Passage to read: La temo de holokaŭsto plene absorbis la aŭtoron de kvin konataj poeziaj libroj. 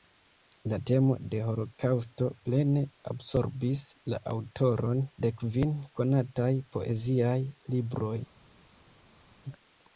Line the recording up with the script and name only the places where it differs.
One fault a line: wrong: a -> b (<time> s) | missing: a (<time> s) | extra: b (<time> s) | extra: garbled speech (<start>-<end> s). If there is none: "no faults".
no faults